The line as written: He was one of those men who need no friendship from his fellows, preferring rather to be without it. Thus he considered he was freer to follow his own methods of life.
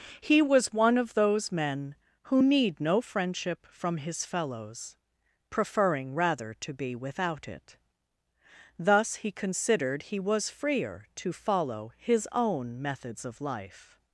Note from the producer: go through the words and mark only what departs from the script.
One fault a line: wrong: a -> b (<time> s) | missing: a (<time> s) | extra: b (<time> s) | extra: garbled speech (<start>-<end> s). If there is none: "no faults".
no faults